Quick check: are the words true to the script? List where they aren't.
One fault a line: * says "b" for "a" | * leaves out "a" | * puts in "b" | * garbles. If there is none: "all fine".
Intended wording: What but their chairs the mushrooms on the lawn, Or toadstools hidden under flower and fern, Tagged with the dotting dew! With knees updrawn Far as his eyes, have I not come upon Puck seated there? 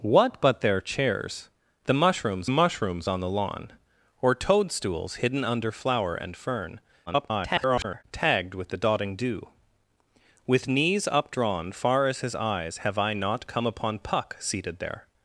* puts in "mushrooms"
* garbles